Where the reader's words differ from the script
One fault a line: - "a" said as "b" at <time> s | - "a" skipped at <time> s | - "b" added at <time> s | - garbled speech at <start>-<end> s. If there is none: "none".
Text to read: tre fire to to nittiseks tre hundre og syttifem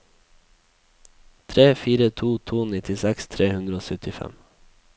none